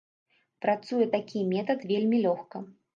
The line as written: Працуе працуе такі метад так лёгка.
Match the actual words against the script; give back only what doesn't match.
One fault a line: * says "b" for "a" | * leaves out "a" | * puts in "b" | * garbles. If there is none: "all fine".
* leaves out "працуе"
* says "вельмі" for "так"